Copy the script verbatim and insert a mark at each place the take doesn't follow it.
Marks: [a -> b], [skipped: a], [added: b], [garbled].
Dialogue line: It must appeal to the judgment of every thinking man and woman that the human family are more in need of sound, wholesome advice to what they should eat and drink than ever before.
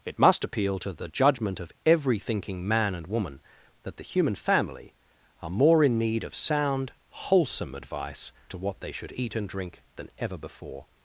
It must appeal to the judgment of every thinking man and woman that the human family are more in need of sound, wholesome advice to what they should eat and drink than ever before.